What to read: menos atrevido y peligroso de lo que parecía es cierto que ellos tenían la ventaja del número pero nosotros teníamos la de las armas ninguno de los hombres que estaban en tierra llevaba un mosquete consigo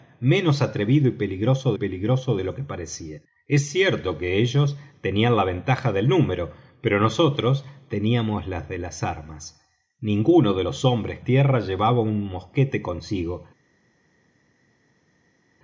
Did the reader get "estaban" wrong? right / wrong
wrong